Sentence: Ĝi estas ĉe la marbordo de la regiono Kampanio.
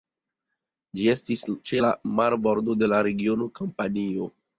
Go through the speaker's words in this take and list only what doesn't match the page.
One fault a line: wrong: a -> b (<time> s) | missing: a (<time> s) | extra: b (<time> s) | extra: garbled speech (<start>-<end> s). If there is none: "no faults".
wrong: estas -> estis (1.1 s)